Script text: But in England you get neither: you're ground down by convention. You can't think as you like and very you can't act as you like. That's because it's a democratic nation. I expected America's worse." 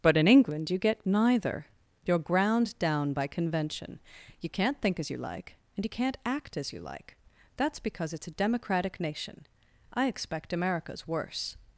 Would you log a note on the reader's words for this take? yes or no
yes